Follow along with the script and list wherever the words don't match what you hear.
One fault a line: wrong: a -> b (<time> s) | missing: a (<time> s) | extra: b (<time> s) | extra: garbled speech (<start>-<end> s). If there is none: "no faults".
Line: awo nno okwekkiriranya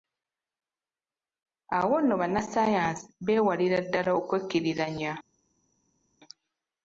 extra: bannassaayansi beewalira ddala (2.2 s)